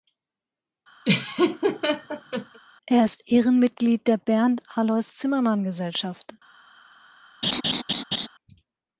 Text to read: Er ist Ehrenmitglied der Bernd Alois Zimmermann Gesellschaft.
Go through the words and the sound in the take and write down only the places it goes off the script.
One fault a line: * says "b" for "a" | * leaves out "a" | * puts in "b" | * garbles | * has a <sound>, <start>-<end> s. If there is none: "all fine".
* has a laugh, 1.0-2.6 s
* has a laugh, 7.4-8.3 s